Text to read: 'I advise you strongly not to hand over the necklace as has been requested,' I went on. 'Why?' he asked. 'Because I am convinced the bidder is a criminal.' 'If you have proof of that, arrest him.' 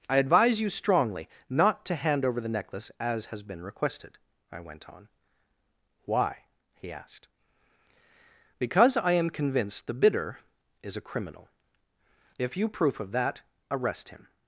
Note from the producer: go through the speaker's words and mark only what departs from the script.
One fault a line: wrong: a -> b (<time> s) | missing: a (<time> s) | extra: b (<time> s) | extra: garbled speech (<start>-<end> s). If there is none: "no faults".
missing: have (12.7 s)